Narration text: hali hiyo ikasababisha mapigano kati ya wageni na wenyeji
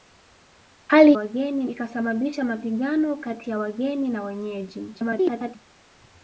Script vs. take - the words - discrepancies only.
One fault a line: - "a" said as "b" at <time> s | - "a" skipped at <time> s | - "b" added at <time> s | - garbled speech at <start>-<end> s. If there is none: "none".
- "hiyo" said as "wageni" at 1.1 s
- garbled speech at 4.9-5.6 s